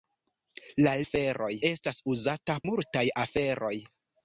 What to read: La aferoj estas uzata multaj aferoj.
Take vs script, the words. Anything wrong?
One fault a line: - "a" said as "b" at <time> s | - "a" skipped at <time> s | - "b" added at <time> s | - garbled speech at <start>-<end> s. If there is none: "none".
none